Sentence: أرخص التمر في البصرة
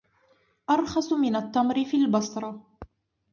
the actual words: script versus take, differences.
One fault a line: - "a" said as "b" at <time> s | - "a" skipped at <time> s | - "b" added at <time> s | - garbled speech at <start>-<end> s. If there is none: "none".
- "من" added at 1.1 s